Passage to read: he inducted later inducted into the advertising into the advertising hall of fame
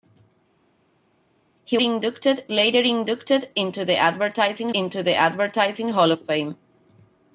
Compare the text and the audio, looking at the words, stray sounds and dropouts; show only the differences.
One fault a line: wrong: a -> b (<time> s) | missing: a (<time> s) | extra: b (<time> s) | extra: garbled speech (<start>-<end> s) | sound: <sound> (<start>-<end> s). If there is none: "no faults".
no faults